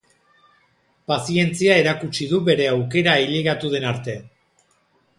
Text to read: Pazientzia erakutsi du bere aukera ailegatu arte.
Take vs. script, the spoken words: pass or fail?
fail